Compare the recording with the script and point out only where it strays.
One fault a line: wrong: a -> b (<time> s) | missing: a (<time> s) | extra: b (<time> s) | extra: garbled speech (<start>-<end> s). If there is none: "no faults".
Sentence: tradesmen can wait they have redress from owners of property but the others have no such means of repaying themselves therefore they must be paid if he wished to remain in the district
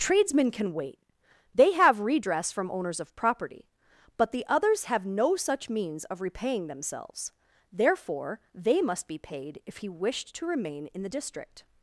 no faults